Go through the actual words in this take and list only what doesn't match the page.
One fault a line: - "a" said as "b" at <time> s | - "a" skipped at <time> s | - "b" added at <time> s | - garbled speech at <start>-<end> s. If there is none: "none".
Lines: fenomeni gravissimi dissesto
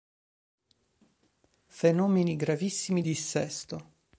none